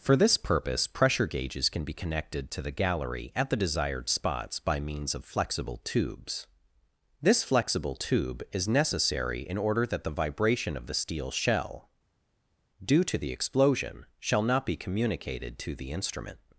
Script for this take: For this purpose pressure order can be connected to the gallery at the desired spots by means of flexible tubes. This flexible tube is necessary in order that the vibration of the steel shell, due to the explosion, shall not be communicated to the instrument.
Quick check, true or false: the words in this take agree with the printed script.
false